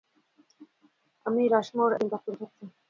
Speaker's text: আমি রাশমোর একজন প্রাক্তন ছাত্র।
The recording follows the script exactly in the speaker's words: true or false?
true